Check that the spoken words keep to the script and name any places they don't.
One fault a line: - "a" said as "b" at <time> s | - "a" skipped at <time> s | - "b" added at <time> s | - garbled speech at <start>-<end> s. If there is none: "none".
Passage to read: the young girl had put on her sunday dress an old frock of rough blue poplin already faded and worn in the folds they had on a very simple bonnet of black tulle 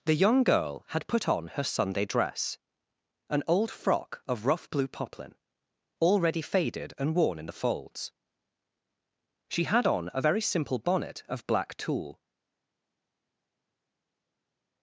- "they" said as "she" at 9.5 s